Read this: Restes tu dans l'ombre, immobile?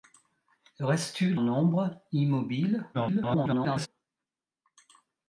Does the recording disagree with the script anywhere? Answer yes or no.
yes